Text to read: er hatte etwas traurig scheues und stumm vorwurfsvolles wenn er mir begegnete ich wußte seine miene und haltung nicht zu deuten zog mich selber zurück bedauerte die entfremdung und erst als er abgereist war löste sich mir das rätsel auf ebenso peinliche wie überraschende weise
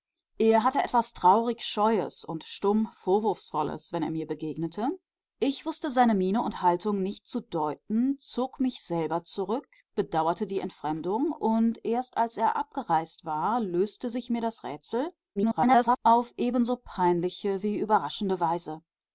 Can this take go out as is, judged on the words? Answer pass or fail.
fail